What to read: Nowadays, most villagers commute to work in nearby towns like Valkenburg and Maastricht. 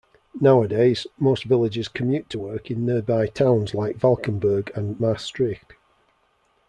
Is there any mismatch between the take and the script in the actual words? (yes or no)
no